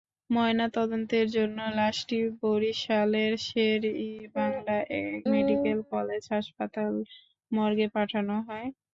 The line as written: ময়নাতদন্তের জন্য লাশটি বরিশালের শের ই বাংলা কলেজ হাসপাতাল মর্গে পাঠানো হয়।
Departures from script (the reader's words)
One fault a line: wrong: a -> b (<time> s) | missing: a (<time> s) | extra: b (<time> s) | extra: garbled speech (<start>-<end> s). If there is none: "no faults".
extra: মেডিকেল (5.3 s)